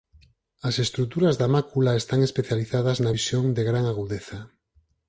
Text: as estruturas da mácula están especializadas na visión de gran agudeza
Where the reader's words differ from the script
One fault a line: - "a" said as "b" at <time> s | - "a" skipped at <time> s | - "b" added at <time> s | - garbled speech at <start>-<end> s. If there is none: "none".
none